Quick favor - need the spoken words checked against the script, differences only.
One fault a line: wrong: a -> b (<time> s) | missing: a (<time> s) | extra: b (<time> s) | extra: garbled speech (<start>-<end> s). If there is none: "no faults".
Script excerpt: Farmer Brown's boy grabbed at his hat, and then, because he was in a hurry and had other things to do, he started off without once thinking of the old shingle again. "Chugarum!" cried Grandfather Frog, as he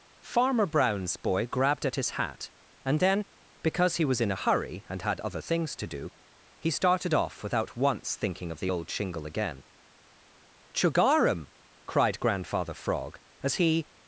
no faults